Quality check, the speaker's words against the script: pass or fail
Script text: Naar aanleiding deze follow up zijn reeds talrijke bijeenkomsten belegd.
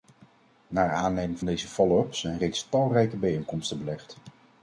pass